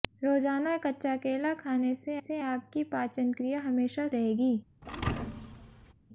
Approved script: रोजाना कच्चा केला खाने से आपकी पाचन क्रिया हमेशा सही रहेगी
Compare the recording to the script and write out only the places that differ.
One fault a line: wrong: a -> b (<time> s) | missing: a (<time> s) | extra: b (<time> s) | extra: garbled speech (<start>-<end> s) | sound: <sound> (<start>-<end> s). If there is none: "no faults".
extra: से (2.2 s)
missing: सही (4.1 s)
sound: thud (4.8-5.9 s)